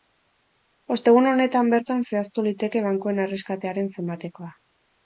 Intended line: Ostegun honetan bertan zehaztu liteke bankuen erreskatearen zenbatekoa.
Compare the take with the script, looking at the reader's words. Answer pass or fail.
pass